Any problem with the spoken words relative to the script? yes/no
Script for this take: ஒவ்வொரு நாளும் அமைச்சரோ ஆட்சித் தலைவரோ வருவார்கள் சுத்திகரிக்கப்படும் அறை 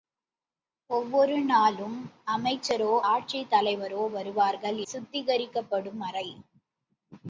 no